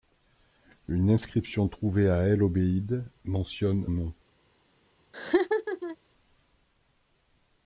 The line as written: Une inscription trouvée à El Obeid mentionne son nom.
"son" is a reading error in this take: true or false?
true